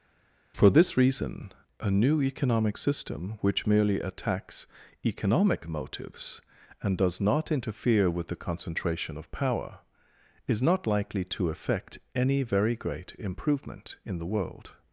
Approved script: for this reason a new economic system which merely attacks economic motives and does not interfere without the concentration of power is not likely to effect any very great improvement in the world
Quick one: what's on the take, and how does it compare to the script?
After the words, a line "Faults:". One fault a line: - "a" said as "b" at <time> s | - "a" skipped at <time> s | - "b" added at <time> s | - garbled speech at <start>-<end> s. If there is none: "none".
for this reason a new economic system which merely attacks economic motives and does not interfere with the concentration of power is not likely to effect any very great improvement in the world
Faults:
- "without" said as "with" at 8.1 s